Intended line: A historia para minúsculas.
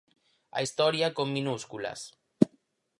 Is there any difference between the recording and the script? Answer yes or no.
yes